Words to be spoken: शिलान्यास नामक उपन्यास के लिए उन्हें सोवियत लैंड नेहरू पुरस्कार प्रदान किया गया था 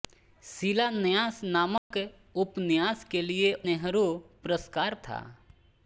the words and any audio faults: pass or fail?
fail